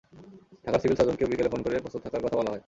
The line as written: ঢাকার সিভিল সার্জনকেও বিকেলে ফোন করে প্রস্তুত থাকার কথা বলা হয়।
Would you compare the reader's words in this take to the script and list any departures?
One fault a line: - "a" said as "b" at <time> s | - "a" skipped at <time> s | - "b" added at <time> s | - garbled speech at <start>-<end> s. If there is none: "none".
none